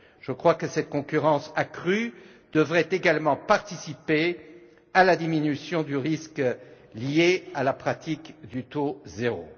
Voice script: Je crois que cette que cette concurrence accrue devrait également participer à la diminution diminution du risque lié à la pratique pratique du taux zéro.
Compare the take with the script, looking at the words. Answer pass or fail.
fail